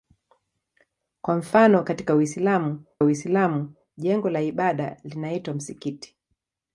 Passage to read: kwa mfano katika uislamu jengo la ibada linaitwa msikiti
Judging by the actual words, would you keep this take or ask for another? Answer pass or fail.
fail